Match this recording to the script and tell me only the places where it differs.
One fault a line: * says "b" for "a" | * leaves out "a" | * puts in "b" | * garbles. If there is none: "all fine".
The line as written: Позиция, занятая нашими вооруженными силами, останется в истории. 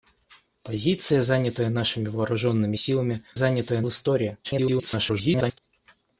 * says "занятая" for "останется"
* garbles